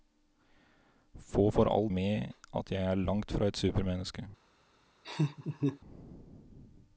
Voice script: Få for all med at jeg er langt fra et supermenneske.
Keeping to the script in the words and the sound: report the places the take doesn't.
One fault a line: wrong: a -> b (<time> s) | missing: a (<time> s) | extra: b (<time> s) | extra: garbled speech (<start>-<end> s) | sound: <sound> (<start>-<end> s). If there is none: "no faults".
sound: laugh (5.0-5.8 s)